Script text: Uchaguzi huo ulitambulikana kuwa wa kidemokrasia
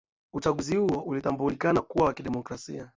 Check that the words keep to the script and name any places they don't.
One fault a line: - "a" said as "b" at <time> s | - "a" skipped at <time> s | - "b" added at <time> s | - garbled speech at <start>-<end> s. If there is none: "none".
none